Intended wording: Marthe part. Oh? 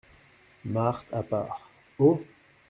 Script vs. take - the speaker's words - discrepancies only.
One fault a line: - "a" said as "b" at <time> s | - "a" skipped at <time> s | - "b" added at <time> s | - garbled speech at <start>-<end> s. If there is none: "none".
- "à" added at 1.1 s